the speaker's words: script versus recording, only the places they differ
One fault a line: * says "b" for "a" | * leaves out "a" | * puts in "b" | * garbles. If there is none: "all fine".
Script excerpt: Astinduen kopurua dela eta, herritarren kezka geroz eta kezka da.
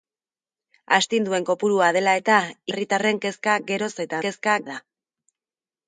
all fine